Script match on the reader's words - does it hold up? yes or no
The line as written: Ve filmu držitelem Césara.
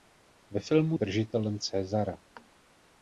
yes